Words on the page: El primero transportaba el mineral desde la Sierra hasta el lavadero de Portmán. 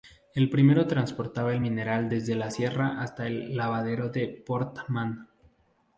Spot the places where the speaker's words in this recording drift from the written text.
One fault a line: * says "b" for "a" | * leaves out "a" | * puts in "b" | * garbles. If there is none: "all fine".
all fine